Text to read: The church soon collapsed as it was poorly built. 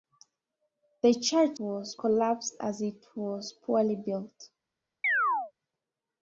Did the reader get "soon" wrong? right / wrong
wrong